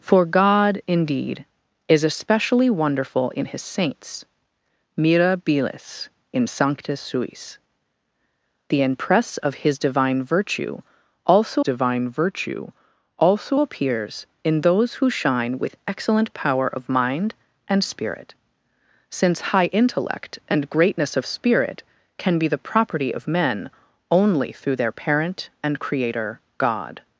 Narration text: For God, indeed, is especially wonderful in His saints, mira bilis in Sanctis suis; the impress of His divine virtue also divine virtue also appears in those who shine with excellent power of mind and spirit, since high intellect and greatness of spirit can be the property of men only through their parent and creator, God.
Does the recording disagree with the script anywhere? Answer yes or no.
no